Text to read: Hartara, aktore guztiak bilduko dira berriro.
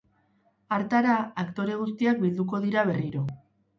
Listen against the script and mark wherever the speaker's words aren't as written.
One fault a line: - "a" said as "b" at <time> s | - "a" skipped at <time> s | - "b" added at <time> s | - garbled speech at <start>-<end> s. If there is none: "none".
none